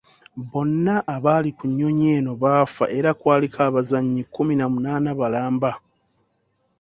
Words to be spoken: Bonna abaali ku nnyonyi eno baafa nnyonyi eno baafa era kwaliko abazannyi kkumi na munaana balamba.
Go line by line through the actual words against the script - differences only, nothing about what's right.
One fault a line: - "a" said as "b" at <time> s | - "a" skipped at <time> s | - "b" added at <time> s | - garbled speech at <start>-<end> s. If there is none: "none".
- "nnyonyi eno baafa" skipped at 2.8 s